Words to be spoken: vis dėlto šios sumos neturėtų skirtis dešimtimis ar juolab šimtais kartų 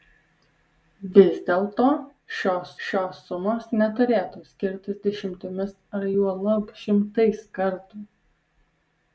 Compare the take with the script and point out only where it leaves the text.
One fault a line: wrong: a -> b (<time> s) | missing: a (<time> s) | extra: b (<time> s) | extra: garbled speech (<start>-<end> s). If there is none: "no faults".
extra: šios (2.9 s)